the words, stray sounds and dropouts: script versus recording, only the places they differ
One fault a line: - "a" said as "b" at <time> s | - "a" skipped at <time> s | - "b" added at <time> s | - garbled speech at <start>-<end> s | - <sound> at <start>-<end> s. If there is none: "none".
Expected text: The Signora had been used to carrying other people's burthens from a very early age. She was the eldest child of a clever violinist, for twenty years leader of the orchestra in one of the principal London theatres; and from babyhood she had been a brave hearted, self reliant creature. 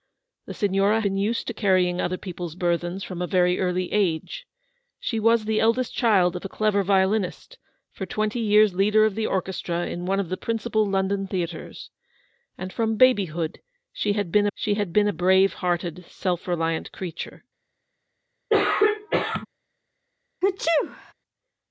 - "had" skipped at 1.0 s
- "she had been" added at 14.5 s
- throat clearing at 18.5-19.5 s
- sneeze at 20.4-21.1 s